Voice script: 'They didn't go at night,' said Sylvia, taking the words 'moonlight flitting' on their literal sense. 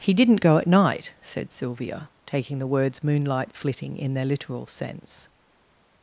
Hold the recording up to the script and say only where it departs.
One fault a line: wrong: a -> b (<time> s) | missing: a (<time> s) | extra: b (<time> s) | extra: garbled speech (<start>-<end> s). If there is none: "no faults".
wrong: They -> He (0.0 s)
wrong: on -> in (4.0 s)